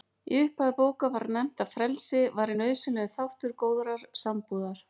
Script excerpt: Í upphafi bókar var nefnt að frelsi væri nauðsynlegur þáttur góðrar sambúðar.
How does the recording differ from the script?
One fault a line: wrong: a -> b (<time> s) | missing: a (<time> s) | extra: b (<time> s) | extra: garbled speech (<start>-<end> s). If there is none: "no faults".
no faults